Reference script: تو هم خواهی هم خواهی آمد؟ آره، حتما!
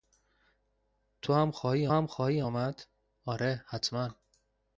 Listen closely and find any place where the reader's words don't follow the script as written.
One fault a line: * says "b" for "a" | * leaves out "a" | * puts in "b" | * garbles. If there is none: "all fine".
all fine